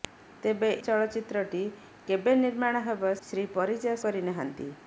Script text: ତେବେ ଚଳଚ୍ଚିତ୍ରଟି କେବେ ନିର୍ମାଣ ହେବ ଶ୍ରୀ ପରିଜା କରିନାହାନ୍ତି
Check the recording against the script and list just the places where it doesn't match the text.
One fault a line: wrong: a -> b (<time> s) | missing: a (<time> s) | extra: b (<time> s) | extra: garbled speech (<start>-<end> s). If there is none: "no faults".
no faults